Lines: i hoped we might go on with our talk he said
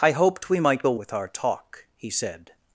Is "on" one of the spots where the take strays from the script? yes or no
yes